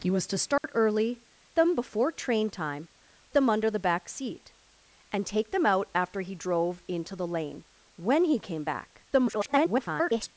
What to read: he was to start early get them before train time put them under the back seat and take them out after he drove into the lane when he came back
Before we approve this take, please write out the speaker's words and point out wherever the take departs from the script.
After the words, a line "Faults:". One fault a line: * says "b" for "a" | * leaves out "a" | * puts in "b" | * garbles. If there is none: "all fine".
he was to start early them before train time them under the back seat and take them out after he drove into the lane when he came back [garbled]
Faults:
* leaves out "get"
* leaves out "put"
* garbles